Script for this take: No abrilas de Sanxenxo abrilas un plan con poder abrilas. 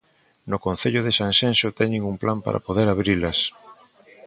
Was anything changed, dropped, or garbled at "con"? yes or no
yes